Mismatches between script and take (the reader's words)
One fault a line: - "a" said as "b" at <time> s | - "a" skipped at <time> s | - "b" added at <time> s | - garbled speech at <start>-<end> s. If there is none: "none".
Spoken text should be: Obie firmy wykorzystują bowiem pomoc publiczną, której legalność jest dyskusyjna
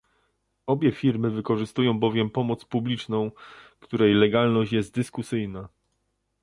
none